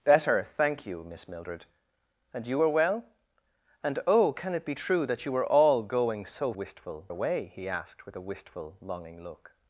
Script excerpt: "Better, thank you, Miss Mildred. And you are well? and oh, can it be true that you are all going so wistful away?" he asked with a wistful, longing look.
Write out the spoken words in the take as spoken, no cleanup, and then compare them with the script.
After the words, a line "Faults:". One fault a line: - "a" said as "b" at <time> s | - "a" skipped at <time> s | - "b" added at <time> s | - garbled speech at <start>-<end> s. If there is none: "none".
"Better, thank you, Miss Mildred. And you are well? and oh, can it be true that you are all going so wistful away?" he asked with a wistful, longing look.
Faults:
none